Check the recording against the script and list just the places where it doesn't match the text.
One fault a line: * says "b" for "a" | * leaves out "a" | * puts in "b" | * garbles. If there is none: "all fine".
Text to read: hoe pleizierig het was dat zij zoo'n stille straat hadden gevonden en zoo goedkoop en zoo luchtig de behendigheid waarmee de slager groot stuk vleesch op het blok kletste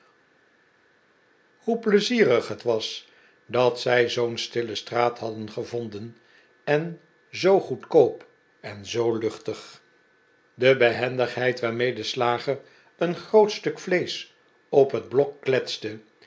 * puts in "een"